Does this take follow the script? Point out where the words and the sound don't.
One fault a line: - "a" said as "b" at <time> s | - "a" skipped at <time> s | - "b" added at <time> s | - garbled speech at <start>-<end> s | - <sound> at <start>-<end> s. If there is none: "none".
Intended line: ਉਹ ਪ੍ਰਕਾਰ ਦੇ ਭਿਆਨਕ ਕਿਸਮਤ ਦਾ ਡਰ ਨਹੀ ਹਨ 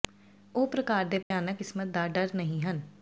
- dropout at 1.2-1.3 s